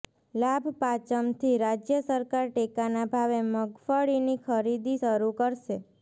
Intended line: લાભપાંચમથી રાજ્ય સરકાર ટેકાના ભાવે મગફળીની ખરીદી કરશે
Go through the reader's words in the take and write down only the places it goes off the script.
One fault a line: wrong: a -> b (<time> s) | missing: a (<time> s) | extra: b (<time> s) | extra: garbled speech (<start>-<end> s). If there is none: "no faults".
extra: શરૂ (5.0 s)